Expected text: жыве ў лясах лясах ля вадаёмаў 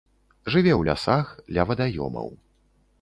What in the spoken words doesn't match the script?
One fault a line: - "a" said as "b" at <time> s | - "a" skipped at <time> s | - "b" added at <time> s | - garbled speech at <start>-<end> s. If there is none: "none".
- "лясах" skipped at 1.3 s